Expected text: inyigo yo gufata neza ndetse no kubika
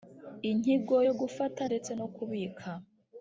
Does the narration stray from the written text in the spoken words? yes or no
yes